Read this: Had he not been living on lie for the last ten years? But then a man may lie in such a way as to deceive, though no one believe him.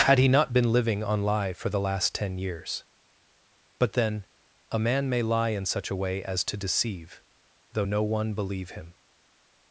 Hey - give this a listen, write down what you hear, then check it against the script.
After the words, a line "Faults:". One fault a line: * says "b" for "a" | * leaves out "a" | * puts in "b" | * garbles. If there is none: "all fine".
Had he not been living on lie for the last ten years? But then a man may lie in such a way as to deceive, though no one believe him.
Faults:
all fine